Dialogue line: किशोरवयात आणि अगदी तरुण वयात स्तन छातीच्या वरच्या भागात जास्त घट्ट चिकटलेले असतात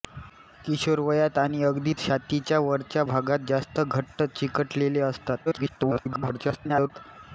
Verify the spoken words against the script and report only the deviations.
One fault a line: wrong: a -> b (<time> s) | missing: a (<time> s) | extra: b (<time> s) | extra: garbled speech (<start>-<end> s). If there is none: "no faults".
missing: तरुण वयात स्तन (1.9 s)
extra: garbled speech (5.5-6.9 s)